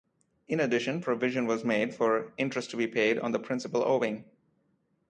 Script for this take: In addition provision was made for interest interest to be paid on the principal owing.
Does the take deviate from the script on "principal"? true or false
false